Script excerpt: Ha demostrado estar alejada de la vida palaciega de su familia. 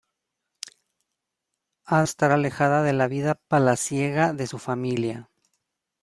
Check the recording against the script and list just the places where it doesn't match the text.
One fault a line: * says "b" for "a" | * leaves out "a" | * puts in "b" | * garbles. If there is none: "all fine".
* leaves out "demostrado"